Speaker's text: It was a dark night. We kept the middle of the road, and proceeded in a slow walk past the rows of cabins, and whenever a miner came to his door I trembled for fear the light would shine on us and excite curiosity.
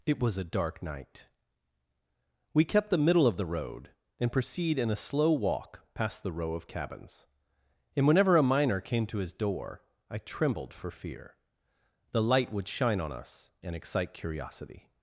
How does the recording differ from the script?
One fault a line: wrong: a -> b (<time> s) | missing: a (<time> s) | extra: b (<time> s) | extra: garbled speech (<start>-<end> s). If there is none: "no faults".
wrong: proceeded -> proceed (4.3 s)
wrong: rows -> row (6.3 s)